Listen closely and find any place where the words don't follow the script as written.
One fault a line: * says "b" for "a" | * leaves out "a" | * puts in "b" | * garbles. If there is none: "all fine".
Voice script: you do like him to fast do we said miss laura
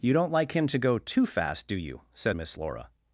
* says "don't" for "do"
* puts in "go too"
* says "you" for "we"